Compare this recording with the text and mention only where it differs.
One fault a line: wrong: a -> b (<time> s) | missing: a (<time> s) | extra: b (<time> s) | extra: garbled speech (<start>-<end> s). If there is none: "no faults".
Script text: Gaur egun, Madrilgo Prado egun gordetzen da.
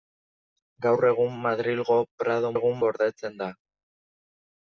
no faults